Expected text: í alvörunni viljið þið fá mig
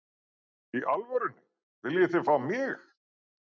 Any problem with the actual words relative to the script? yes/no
no